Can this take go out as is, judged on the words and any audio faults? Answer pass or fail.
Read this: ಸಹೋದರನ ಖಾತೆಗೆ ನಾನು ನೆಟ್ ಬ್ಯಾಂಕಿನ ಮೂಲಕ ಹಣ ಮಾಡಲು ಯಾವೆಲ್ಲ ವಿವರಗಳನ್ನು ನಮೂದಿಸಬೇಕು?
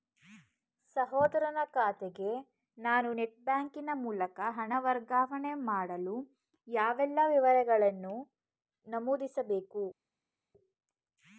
fail